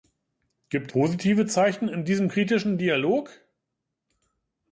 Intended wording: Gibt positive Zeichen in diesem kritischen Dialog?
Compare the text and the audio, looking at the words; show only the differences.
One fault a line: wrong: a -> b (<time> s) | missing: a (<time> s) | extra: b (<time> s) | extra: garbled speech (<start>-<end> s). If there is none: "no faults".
no faults